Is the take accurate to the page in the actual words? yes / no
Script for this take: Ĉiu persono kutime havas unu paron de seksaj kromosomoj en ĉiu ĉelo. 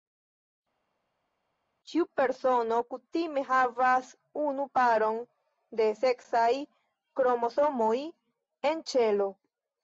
no